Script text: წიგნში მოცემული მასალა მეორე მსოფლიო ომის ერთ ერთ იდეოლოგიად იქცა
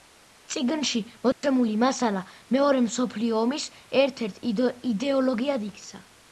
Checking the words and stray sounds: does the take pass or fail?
fail